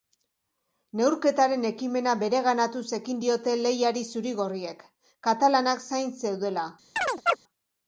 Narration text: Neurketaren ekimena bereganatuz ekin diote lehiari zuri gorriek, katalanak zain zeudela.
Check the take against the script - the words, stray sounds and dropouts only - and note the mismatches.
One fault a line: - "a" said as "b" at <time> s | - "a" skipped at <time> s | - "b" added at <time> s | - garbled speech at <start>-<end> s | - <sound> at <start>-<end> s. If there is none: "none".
- chirp at 7.0-7.4 s